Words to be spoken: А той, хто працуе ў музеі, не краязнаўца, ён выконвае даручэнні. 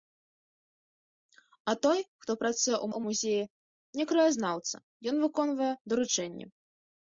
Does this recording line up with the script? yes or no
no